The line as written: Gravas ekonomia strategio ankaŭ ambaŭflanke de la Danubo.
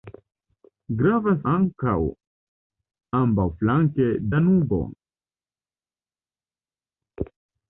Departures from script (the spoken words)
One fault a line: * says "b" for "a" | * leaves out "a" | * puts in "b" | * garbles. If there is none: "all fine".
* leaves out "ekonomia strategio"
* leaves out "de la"